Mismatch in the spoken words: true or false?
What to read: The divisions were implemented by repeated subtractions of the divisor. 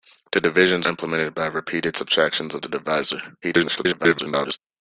true